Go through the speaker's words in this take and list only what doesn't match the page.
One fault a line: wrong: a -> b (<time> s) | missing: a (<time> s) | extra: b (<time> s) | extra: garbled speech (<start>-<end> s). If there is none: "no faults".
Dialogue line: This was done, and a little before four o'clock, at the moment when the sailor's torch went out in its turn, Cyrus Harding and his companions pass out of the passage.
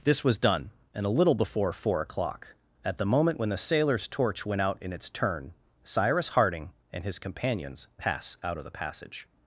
no faults